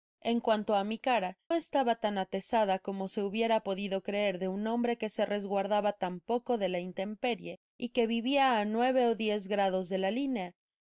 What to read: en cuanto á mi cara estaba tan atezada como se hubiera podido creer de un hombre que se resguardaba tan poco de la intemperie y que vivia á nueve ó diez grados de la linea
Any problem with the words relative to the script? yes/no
no